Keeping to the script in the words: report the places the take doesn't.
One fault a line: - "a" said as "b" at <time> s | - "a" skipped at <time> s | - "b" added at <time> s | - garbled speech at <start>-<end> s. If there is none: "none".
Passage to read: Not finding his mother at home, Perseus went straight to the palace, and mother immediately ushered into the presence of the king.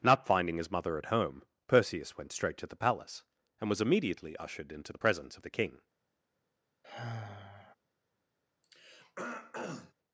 - "mother" said as "was" at 3.7 s